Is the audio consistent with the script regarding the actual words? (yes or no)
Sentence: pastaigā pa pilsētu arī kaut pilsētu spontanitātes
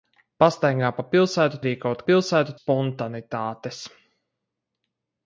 yes